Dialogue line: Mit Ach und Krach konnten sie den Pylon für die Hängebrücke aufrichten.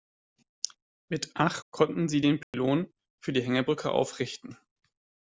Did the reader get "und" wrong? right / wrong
wrong